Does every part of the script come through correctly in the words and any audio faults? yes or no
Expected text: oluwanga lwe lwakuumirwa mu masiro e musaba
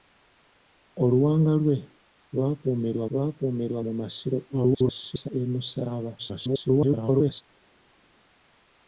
no